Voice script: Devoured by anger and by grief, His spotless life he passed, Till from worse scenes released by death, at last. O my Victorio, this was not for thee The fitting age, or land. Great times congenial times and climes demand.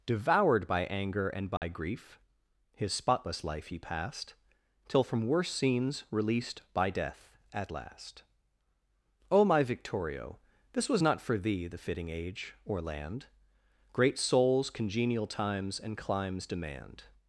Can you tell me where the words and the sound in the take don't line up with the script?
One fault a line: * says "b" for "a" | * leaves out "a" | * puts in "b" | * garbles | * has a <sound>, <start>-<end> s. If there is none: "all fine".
* has a dropout, 1.6-1.6 s
* says "souls" for "times"